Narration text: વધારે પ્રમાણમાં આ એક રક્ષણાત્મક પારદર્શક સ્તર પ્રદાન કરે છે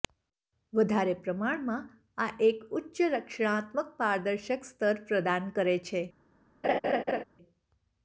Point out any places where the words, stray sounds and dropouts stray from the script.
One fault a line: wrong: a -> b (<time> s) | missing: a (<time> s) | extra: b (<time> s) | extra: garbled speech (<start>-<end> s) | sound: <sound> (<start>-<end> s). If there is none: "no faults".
extra: ઉચ્ચ (2.8 s)
sound: laugh (6.6-7.2 s)